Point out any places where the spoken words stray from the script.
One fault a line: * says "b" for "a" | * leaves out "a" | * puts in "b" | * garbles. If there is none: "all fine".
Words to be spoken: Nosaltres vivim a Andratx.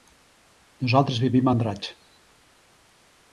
all fine